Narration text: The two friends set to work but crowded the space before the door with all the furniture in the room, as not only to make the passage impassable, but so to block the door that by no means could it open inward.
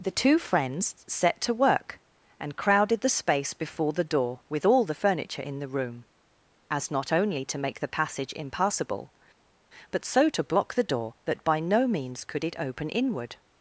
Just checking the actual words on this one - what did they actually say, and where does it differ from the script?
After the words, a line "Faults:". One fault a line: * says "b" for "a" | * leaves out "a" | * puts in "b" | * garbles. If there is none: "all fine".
The two friends set to work and crowded the space before the door with all the furniture in the room, as not only to make the passage impassable, but so to block the door that by no means could it open inward.
Faults:
* says "and" for "but"